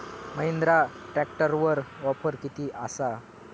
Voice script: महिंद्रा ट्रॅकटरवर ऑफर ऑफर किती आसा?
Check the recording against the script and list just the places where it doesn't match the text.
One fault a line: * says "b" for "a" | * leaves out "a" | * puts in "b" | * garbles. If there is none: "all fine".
* leaves out "ऑफर"